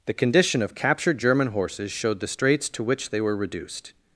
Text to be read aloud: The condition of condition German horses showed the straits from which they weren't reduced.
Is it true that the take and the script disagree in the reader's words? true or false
true